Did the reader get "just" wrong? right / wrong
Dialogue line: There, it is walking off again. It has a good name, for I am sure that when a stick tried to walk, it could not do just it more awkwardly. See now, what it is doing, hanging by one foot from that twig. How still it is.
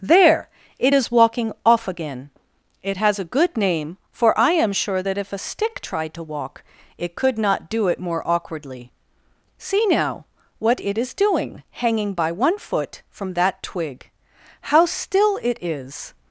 wrong